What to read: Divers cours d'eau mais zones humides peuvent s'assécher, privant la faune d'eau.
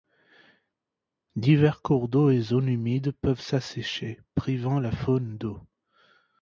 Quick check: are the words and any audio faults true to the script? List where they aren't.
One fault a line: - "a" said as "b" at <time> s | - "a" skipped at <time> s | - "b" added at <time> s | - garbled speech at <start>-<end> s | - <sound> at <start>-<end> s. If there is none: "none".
- "mais" said as "et" at 2.3 s